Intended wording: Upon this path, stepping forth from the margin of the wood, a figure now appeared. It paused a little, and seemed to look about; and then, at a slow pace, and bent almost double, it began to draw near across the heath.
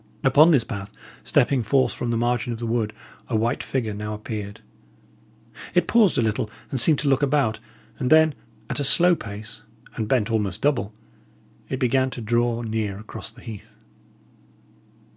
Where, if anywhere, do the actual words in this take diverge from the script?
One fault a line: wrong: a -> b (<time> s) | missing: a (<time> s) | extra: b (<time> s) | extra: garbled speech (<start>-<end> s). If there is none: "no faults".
extra: white (3.4 s)